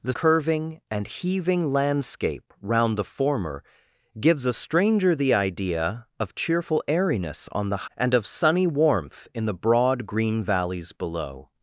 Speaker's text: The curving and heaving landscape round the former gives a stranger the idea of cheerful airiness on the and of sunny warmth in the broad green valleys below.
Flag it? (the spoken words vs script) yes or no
no